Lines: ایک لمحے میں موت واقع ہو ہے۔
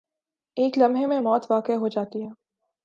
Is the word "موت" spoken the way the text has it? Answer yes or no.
yes